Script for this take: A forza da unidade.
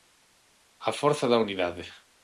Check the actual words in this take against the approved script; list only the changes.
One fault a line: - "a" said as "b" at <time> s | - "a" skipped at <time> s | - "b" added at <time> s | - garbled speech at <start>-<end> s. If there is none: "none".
none